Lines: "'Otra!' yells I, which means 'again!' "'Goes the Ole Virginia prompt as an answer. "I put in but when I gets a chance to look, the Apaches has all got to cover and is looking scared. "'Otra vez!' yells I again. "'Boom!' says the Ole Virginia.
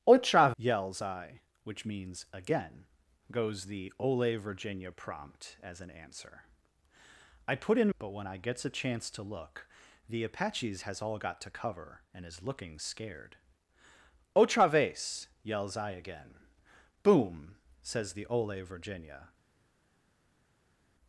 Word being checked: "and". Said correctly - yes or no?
yes